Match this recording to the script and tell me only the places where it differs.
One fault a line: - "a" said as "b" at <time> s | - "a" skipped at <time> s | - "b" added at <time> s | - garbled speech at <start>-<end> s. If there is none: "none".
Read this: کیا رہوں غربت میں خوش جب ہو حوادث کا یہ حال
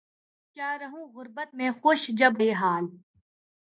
- "ہو حوادث کا" skipped at 2.4 s